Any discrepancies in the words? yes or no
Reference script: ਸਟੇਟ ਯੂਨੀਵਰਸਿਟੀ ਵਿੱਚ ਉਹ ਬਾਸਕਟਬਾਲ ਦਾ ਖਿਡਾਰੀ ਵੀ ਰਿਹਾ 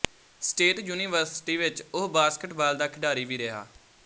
no